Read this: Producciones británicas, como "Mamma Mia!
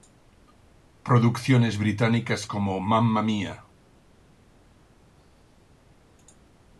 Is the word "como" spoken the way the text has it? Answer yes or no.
yes